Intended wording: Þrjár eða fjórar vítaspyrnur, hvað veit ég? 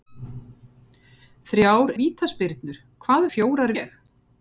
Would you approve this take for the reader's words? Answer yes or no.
no